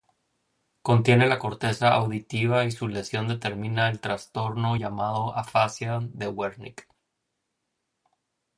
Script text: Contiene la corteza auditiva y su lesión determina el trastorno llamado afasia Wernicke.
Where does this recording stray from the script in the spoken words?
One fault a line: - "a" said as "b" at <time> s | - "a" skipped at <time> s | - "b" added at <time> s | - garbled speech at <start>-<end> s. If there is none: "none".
- "de" added at 6.0 s